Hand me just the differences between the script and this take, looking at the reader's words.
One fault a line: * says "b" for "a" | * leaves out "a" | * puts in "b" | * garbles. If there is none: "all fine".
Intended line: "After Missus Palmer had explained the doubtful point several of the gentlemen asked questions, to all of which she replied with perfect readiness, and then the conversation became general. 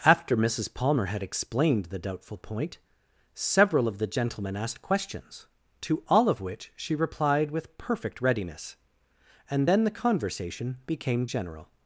all fine